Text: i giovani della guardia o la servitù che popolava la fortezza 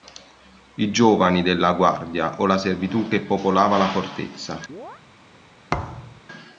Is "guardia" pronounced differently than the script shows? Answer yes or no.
no